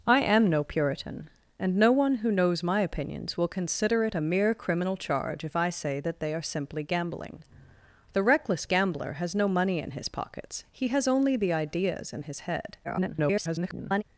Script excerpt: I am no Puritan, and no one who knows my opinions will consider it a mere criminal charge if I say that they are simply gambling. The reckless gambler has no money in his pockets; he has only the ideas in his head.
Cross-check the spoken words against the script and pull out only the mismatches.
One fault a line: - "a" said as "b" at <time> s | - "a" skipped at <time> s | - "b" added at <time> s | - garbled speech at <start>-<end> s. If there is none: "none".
- garbled speech at 12.8-14.0 s